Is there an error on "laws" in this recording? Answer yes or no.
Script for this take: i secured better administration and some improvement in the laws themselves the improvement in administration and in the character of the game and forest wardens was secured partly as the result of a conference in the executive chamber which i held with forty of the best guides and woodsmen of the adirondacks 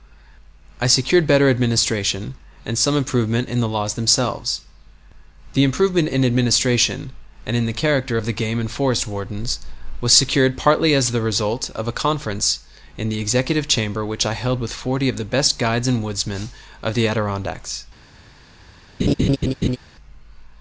no